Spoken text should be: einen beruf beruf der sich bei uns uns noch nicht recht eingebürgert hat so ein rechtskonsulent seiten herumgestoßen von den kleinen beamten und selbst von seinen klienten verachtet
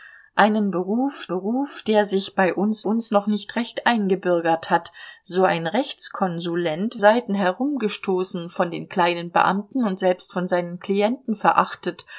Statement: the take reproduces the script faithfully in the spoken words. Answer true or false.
true